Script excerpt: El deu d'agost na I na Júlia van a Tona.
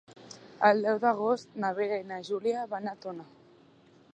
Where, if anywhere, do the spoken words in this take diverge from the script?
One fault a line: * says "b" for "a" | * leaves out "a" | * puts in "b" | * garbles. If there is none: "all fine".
* puts in "Vera"